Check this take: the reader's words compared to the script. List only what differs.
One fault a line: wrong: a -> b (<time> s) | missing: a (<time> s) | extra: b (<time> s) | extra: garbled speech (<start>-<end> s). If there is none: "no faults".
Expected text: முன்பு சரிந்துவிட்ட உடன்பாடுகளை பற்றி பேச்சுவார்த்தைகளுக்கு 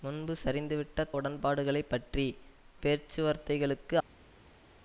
no faults